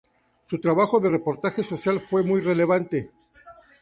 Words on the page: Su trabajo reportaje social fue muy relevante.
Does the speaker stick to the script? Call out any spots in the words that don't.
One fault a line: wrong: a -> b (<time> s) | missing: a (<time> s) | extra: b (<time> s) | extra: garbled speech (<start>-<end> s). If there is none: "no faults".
extra: de (1.0 s)